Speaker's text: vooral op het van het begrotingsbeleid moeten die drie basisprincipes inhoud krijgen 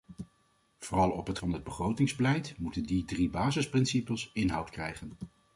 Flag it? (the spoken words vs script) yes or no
no